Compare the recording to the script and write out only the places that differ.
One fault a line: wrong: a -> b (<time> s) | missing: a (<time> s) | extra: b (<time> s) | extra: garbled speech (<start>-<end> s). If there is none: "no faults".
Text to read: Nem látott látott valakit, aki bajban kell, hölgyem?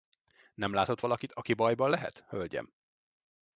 missing: látott (1.0 s)
wrong: kell -> lehet (1.9 s)